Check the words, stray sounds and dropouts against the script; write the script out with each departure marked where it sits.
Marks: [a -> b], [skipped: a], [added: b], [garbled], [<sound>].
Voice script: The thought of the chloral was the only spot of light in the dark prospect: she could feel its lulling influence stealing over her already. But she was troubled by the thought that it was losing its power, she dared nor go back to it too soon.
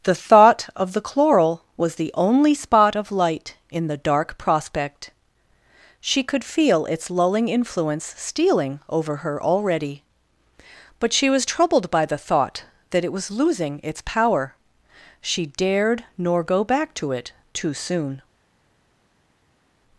The thought of the chloral was the only spot of light in the dark prospect: she could feel its lulling influence stealing over her already. But she was troubled by the thought that it was losing its power, she dared nor go back to it too soon.